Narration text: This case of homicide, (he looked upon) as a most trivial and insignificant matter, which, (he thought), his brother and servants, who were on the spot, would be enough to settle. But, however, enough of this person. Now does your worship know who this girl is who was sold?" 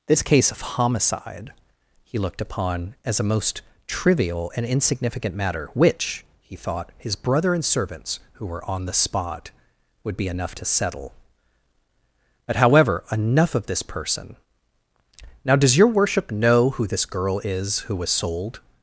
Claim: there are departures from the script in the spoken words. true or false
false